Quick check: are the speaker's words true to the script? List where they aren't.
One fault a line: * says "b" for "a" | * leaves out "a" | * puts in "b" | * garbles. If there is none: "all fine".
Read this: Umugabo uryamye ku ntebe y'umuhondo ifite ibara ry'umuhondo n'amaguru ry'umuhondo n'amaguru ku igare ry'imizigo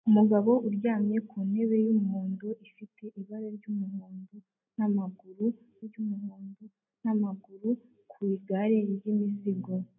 all fine